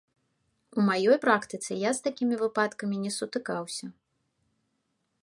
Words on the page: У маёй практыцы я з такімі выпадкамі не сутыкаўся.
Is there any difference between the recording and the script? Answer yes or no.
no